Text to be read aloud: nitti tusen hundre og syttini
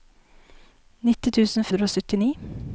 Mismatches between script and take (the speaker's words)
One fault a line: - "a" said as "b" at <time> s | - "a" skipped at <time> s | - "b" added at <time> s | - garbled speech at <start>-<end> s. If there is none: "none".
none